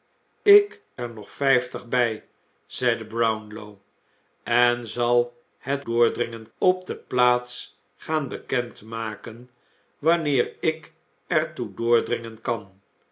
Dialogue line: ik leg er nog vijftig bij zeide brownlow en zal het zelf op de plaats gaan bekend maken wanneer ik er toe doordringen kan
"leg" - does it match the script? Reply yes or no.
no